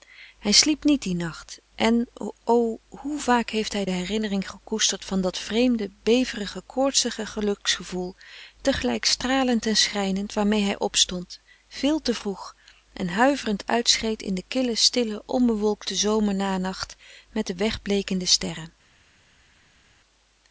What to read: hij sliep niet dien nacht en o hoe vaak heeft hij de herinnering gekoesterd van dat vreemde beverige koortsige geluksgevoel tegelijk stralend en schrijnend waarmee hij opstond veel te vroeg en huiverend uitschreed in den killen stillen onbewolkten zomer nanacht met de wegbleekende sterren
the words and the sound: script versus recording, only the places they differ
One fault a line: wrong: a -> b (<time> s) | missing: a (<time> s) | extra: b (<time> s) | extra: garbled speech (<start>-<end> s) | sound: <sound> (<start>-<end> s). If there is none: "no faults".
no faults